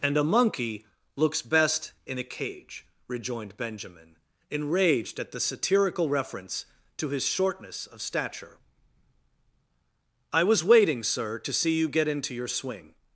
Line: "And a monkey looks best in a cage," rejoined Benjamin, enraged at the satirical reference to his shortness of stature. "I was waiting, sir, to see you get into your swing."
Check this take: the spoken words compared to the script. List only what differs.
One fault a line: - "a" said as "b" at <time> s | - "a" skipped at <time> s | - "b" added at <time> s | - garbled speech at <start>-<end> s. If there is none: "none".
none